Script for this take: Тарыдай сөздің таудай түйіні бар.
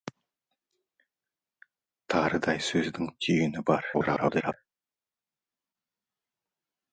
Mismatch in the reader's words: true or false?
true